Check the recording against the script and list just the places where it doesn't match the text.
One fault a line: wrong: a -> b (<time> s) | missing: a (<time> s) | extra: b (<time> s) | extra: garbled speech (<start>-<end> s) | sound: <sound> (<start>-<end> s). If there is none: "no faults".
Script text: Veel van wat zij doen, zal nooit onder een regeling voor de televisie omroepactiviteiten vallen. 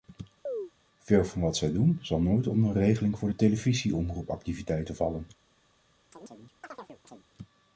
sound: chirp (0.5-0.7 s)
sound: chirp (6.1-7.2 s)